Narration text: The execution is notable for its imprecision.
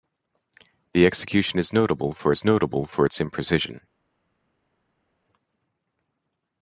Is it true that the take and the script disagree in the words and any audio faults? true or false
true